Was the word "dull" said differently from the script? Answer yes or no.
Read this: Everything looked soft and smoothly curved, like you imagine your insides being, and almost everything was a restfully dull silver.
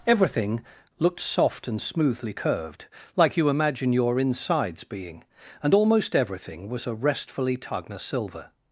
yes